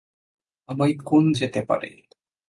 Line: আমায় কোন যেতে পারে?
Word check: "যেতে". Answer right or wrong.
right